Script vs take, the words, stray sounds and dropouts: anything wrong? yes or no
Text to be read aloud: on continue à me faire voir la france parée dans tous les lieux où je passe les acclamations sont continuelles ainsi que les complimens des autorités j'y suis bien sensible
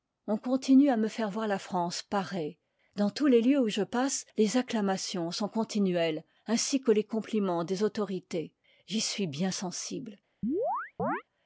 yes